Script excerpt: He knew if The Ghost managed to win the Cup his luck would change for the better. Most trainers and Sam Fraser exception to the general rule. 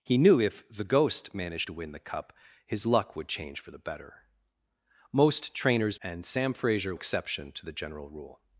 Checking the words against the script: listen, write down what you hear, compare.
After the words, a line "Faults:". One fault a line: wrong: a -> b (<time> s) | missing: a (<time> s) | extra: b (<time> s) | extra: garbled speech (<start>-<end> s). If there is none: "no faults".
He knew if The Ghost managed to win the Cup his luck would change for the better. Most trainers and Sam Fraser exception to the general rule.
Faults:
no faults